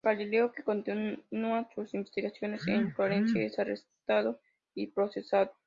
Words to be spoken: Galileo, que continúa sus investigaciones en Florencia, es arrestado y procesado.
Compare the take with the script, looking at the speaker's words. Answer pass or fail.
pass